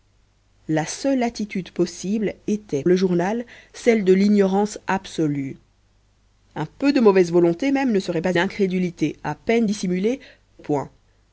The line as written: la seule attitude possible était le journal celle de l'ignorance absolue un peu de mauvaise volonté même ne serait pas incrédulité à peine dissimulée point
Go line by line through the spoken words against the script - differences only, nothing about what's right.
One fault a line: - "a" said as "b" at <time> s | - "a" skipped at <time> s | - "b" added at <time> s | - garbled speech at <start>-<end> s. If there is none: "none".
none